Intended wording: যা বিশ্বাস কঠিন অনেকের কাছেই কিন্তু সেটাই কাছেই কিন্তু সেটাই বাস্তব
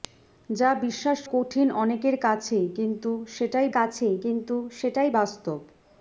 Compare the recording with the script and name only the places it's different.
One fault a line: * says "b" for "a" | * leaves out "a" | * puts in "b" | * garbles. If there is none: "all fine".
all fine